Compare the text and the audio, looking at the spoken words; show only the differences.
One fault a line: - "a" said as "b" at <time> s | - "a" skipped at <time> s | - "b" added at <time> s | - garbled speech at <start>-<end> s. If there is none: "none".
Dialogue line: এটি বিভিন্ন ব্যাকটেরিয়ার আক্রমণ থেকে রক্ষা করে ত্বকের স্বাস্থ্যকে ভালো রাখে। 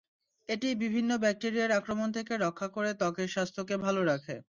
none